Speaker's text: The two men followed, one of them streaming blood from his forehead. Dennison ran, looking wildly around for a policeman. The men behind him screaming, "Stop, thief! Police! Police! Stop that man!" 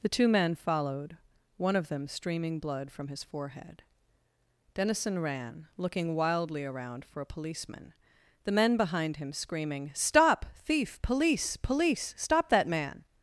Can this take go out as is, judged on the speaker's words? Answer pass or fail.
pass